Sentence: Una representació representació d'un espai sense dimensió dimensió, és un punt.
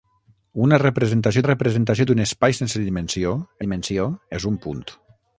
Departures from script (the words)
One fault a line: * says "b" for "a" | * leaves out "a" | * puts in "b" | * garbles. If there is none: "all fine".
all fine